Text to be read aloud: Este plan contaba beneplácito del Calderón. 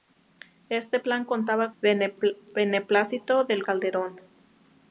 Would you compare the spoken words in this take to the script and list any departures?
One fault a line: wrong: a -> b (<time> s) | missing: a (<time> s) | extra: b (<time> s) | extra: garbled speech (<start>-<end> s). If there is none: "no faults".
no faults